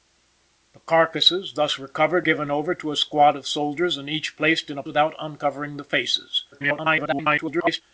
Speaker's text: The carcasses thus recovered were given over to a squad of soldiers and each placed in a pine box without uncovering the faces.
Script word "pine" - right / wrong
wrong